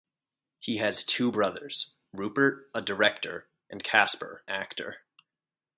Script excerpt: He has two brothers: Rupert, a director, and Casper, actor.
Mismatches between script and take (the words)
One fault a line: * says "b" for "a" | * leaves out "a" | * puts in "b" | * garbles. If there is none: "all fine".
all fine